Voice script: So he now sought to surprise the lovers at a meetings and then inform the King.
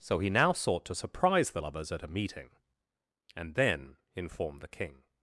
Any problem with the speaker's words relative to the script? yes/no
yes